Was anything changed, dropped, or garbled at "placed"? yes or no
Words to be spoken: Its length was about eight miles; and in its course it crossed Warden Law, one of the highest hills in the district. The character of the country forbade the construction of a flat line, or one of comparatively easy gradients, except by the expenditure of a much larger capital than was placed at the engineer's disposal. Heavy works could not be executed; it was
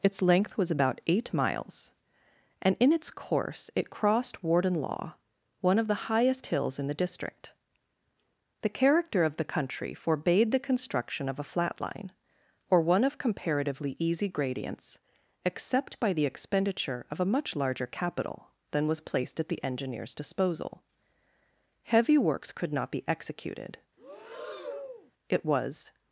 no